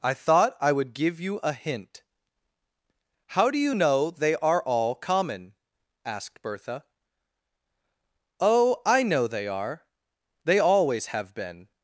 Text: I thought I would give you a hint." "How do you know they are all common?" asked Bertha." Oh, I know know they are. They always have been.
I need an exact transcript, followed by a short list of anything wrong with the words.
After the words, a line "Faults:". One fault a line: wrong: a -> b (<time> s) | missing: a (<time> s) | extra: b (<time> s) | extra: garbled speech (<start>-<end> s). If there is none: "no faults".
I thought I would give you a hint." "How do you know they are all common?" asked Bertha." Oh, I know they are. They always have been.
Faults:
missing: know (9.3 s)